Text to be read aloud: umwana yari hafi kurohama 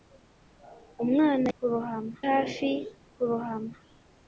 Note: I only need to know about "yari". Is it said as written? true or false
false